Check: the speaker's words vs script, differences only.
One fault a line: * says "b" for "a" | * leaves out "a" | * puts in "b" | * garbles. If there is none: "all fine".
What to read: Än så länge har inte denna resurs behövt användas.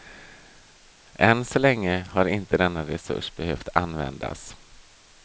all fine